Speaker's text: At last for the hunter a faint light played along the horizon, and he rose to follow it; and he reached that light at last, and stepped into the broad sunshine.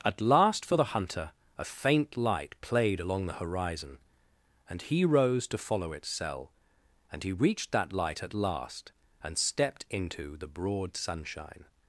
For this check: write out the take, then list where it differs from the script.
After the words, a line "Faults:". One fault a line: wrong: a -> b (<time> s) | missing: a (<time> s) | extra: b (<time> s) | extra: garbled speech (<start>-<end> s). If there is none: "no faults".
At last for the hunter a faint light played along the horizon, and he rose to follow its cell; and he reached that light at last, and stepped into the broad sunshine.
Faults:
wrong: it -> its cell (5.9 s)